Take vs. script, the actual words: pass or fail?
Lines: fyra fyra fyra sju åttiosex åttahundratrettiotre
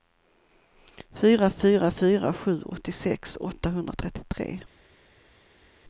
pass